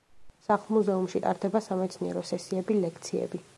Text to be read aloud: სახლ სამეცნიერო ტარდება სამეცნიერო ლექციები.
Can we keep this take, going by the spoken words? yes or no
no